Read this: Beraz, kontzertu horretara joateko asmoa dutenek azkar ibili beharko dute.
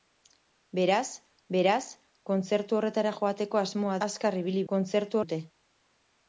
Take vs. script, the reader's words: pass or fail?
fail